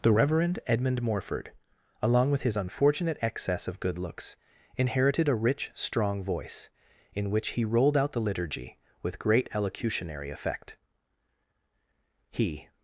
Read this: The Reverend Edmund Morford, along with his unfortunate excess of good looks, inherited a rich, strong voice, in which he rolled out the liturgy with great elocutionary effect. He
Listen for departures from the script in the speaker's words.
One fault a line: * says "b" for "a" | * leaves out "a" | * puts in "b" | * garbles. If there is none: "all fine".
all fine